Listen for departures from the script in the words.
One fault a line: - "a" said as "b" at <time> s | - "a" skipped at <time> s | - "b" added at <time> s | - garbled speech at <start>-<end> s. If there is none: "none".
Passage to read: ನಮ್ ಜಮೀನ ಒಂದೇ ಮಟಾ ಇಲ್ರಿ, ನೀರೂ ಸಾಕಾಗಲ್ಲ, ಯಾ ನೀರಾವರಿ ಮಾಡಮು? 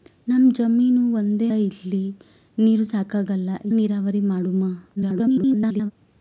- "ಮಟಾ" skipped at 1.5 s
- "ಯಾ" skipped at 3.5 s
- garbled speech at 5.0-5.9 s